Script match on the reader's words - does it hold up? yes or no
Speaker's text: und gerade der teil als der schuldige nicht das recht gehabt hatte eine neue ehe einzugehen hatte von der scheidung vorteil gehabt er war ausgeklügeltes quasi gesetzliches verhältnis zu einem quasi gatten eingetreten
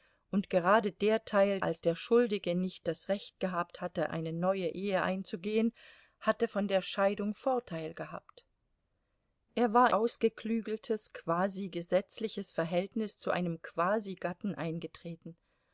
yes